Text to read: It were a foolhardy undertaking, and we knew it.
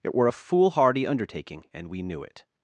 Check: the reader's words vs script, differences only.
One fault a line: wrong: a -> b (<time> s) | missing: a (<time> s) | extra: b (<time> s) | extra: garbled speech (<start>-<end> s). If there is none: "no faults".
no faults